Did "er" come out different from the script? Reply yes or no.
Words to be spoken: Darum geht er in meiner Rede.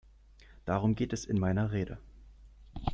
yes